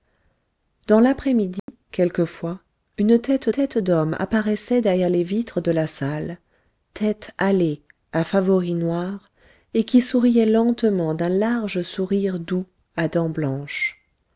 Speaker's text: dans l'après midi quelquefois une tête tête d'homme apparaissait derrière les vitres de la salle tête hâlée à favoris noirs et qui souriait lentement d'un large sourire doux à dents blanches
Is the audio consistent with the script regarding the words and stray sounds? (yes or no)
no